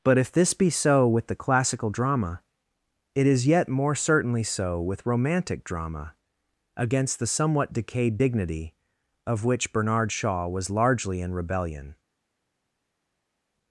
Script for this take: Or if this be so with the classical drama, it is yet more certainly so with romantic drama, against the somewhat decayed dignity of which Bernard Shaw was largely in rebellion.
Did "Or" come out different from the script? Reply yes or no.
yes